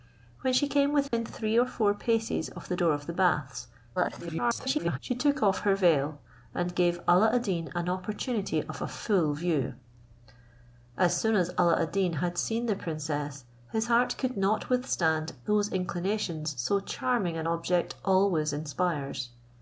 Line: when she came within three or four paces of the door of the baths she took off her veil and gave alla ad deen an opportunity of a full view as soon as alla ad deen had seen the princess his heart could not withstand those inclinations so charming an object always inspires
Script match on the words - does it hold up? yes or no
no